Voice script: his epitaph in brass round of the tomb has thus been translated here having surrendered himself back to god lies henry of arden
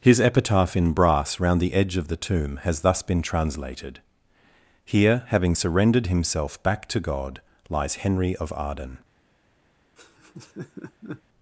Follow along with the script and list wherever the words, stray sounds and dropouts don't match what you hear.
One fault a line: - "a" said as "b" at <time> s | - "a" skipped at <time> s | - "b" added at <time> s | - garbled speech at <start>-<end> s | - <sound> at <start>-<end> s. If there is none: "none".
- "the edge" added at 1.6 s
- laugh at 10.0-11.2 s